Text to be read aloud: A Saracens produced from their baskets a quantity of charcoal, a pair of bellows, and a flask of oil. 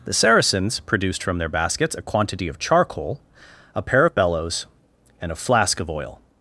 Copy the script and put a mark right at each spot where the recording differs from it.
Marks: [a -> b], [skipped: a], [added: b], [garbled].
[A -> The] Saracens produced from their baskets a quantity of charcoal, a pair of bellows, and a flask of oil.